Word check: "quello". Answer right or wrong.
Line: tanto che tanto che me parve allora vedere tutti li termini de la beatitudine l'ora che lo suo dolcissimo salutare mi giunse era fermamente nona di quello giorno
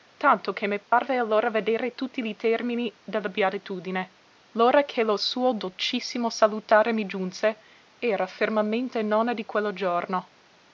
right